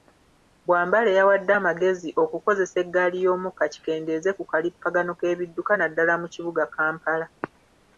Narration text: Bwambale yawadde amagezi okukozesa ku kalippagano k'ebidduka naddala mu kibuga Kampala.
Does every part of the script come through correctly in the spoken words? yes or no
no